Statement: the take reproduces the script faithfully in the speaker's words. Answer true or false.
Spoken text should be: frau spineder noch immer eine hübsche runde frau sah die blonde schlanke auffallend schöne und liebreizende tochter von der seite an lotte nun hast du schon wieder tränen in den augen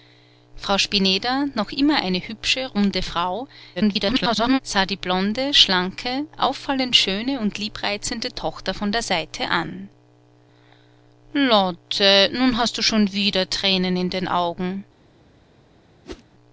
false